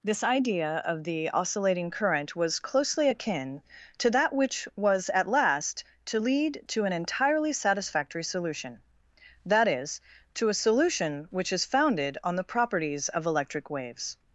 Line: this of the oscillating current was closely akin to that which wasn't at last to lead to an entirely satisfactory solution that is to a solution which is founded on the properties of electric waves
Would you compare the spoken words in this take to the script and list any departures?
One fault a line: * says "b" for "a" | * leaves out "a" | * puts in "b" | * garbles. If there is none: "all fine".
* puts in "idea"
* says "was" for "wasn't"